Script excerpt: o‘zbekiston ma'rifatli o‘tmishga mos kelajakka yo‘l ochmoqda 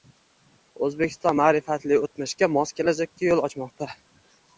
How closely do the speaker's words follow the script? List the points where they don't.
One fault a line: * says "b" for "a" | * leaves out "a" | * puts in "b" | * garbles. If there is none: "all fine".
all fine